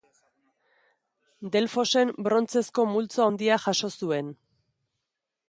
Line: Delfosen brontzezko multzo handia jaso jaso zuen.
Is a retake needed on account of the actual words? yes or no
yes